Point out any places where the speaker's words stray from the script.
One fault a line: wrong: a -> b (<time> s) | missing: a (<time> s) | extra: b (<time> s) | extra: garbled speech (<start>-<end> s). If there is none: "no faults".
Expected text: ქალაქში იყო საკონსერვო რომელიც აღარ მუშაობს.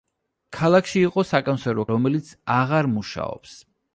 no faults